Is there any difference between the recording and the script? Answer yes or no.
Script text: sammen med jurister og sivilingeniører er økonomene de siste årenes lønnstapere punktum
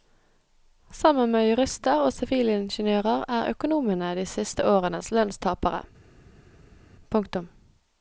no